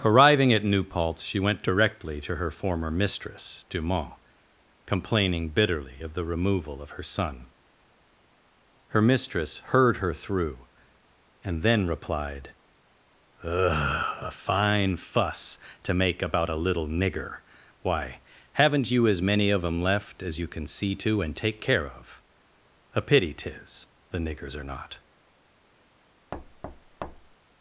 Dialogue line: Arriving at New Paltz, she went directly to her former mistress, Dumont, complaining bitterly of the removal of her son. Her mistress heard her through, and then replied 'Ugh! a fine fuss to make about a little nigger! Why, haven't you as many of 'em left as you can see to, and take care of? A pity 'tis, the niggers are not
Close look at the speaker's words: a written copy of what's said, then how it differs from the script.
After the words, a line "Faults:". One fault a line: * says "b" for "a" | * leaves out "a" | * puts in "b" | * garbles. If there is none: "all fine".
Arriving at New Paltz, she went directly to her former mistress, Dumont, complaining bitterly of the removal of her son. Her mistress heard her through, and then replied 'Ugh! a fine fuss to make about a little nigger! Why, haven't you as many of 'em left as you can see to, and take care of? A pity 'tis, the niggers are not
Faults:
all fine